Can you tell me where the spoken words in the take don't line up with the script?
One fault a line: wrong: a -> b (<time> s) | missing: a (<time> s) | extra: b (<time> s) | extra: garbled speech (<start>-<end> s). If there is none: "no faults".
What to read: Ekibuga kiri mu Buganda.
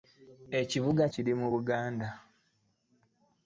no faults